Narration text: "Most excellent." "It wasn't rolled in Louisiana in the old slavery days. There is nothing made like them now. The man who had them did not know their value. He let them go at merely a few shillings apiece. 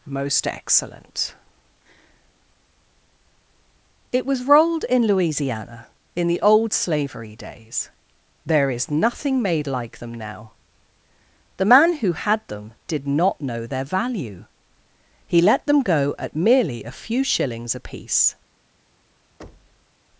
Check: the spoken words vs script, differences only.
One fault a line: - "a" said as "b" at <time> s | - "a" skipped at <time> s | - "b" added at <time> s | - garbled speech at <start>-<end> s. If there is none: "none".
- "wasn't" said as "was" at 4.2 s